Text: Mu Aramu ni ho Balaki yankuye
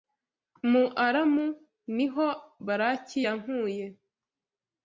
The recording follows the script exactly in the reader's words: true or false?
true